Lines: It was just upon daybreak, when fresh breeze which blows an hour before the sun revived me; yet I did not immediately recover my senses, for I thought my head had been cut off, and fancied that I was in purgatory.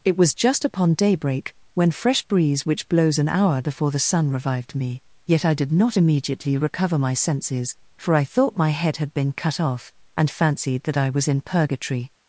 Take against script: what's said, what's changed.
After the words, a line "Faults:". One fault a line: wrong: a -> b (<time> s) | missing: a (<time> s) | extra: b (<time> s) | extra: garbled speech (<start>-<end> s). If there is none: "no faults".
It was just upon daybreak, when fresh breeze which blows an hour before the sun revived me; yet I did not immediately recover my senses, for I thought my head had been cut off, and fancied that I was in purgatory.
Faults:
no faults